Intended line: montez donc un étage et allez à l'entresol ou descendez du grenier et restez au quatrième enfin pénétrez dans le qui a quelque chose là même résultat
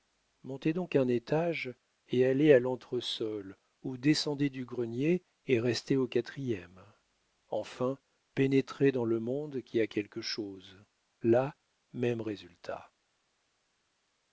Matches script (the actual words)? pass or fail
fail